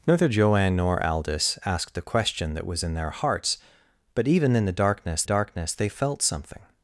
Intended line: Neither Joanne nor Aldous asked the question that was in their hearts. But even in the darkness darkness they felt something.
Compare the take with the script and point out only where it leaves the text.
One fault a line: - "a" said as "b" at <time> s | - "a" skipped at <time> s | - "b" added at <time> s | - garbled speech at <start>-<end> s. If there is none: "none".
none